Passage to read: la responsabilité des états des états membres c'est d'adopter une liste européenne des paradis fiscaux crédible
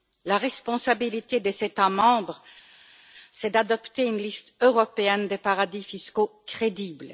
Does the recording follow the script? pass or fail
fail